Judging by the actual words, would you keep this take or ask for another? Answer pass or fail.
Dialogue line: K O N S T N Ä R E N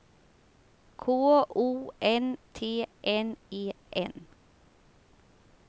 fail